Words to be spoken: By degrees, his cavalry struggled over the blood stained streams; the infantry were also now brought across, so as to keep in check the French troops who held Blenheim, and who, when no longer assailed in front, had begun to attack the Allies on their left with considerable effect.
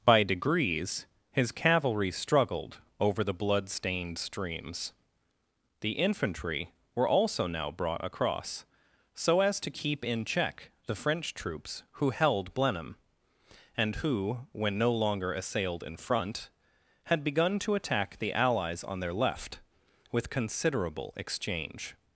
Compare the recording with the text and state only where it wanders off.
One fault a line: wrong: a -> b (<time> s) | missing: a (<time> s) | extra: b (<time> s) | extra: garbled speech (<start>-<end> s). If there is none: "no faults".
wrong: effect -> exchange (21.1 s)